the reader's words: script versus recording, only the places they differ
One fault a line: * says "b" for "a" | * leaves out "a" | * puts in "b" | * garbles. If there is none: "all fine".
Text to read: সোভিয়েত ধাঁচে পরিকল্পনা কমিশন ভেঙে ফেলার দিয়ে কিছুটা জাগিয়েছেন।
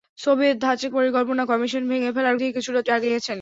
all fine